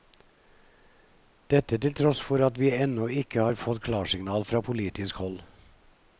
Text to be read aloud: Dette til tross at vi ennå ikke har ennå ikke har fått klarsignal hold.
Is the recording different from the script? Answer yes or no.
yes